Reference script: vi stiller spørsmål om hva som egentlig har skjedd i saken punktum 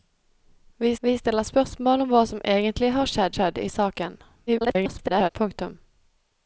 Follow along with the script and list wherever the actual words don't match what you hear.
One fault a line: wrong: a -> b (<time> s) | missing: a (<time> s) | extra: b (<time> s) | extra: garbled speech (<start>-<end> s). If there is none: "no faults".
extra: vi (1.0 s)
extra: skjedd (3.4 s)
extra: garbled speech (4.5-5.3 s)